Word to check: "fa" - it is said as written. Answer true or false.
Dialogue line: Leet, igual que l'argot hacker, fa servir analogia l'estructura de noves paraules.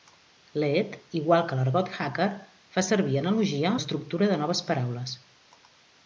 true